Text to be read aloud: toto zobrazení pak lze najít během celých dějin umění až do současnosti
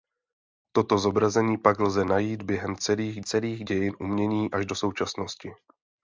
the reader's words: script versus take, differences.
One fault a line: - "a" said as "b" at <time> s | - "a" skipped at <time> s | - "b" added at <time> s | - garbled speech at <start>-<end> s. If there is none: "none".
- "celých" added at 3.2 s